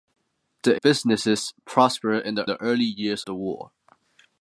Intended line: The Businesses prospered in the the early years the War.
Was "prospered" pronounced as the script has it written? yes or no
yes